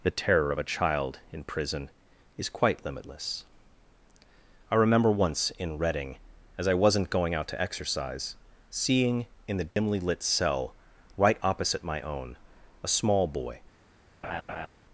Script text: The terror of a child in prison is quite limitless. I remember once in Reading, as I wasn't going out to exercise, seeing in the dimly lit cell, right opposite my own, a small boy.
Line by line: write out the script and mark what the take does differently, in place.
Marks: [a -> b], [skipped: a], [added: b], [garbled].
The terror of a child in prison is quite limitless. I remember once in Reading, as I wasn't going out to exercise, seeing in the dimly lit cell, right opposite my own, a small boy.